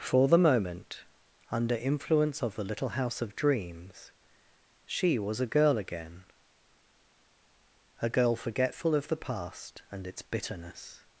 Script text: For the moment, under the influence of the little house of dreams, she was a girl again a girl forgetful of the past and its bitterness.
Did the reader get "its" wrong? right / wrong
right